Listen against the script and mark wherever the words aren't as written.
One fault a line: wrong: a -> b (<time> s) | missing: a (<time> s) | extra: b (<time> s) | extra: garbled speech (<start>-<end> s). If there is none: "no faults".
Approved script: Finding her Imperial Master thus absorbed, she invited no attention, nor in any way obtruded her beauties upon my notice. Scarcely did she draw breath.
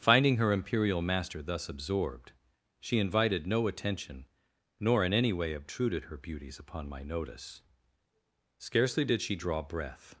no faults